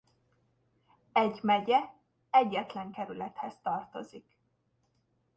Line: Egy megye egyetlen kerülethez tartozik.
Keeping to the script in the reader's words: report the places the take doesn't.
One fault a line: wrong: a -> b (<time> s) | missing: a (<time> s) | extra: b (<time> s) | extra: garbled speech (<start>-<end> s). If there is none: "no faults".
no faults